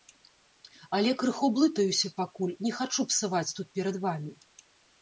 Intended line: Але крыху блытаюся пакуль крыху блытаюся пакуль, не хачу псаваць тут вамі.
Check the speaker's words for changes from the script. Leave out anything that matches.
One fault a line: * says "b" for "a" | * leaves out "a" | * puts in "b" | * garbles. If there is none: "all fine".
* leaves out "крыху блытаюся пакуль"
* puts in "перад"